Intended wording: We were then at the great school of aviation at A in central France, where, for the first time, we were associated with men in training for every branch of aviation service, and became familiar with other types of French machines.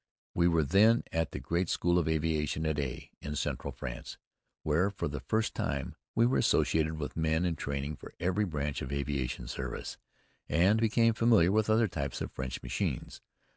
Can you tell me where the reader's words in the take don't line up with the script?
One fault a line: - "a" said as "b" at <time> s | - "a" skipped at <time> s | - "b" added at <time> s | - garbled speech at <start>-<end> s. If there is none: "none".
none